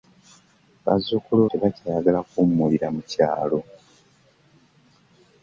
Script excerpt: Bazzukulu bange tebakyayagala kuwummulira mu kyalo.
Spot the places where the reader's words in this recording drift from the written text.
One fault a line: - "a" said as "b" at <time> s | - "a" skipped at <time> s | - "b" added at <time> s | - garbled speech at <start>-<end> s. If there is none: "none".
- "bange" skipped at 1.4 s